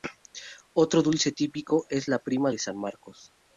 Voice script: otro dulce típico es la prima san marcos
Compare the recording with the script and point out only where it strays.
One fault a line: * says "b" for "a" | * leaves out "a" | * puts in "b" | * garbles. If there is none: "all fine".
* puts in "de"